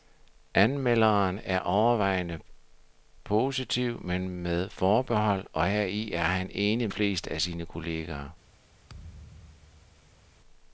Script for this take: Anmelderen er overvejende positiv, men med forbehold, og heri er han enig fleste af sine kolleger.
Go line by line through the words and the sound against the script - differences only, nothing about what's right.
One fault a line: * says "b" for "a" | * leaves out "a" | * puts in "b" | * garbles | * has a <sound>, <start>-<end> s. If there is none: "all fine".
* has a thud, 8.9-10.3 s